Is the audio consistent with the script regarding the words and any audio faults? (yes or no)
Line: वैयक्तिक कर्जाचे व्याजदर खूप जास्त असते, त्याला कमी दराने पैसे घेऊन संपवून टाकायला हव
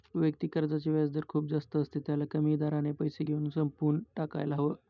yes